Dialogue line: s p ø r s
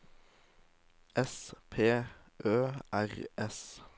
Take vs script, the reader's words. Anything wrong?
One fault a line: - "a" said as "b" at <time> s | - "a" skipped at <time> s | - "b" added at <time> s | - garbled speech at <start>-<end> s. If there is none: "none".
none